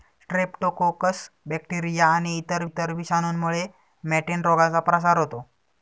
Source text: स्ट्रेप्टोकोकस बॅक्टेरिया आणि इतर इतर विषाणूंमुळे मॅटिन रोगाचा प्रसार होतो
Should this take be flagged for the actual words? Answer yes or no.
no